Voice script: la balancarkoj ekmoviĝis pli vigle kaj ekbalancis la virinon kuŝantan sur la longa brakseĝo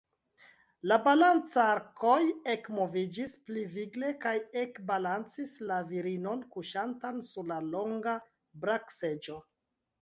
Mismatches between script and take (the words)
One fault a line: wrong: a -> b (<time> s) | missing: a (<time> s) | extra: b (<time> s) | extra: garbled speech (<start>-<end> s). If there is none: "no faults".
no faults